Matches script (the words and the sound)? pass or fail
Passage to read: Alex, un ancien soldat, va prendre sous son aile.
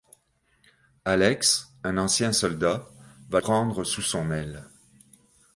pass